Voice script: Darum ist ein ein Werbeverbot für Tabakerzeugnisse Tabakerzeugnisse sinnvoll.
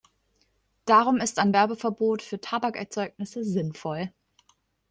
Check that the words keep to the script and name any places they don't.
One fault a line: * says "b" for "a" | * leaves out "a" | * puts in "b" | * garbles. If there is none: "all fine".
* leaves out "ein"
* leaves out "Tabakerzeugnisse"